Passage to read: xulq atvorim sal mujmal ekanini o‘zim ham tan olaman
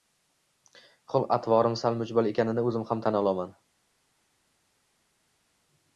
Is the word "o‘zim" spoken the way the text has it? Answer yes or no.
yes